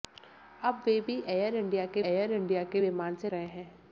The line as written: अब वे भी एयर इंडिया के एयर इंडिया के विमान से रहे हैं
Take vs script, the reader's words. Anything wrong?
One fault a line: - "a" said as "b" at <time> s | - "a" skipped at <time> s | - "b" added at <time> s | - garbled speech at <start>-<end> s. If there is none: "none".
none